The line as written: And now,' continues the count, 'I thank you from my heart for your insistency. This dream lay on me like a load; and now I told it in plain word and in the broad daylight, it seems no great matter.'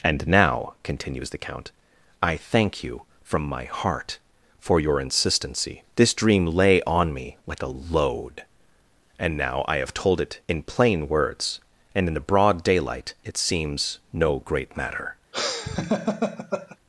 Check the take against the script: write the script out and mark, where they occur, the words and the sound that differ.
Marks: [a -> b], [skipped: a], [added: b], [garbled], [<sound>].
And now,' continues the count, 'I thank you from my heart for your insistency. This dream lay on me like a load; and now I [added: have] told it in plain [word -> words] and in the broad daylight, it seems no great matter.' [laugh]